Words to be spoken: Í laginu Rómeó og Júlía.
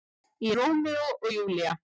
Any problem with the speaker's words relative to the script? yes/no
yes